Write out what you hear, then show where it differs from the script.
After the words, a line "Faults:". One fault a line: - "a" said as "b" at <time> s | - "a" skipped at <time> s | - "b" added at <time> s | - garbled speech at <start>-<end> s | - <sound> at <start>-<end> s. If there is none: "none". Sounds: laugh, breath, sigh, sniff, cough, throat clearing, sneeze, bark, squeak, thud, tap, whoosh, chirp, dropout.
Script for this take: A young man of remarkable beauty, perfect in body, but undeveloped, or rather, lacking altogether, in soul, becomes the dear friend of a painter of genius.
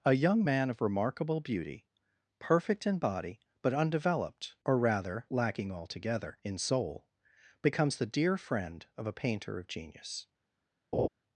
A young man of remarkable beauty, perfect in body, but undeveloped, or rather, lacking altogether, in soul, becomes the dear friend of a painter of genius.
Faults:
- laugh at 10.9-11.1 s